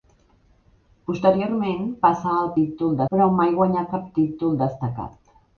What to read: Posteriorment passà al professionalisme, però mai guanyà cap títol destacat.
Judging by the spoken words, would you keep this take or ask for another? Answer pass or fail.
fail